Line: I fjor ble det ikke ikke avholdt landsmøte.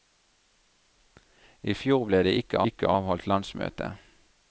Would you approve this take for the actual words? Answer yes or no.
yes